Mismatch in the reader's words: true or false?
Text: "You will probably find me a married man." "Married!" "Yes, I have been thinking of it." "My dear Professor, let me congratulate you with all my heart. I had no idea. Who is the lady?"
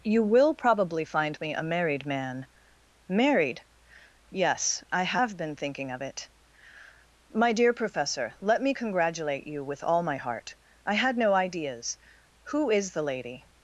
true